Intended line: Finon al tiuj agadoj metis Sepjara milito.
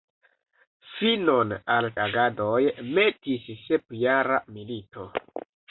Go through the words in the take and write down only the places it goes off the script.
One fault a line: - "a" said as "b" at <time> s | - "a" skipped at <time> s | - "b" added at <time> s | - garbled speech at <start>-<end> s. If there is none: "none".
- "tiuj" skipped at 1.9 s